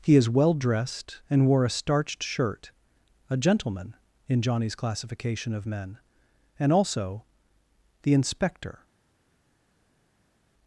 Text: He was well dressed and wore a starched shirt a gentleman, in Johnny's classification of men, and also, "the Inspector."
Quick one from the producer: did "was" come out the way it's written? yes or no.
no